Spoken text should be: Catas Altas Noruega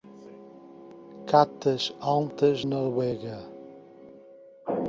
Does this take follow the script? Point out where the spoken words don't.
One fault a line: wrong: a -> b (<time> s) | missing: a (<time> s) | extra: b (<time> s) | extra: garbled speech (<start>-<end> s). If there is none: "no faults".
no faults